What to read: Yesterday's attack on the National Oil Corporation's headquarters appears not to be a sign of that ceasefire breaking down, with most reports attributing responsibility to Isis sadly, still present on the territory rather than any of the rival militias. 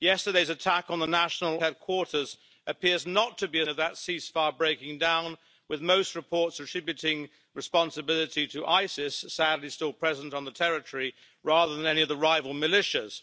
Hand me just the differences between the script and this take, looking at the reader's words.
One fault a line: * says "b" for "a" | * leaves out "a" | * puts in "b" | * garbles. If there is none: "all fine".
* leaves out "Oil Corporation's"
* leaves out "sign"